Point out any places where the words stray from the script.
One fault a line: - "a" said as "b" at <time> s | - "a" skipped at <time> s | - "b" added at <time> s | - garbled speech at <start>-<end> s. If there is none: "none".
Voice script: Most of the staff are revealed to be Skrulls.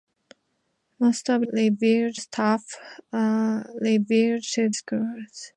- "the" said as "revealed" at 1.5 s
- "be" skipped at 4.7 s